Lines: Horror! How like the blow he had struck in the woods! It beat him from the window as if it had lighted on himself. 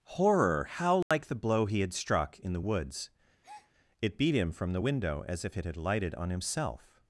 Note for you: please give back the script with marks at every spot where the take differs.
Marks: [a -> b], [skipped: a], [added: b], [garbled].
Horror! How like the blow he had struck in the woods! It beat him from the window as if it had lighted on himself.